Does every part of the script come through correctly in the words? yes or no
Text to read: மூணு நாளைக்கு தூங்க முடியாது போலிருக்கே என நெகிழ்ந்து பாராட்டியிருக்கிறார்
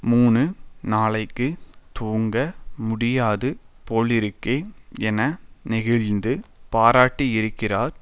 yes